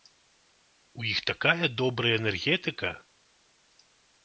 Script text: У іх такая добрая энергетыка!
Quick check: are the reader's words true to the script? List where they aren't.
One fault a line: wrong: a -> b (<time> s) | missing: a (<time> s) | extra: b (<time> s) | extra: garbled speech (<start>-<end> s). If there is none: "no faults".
no faults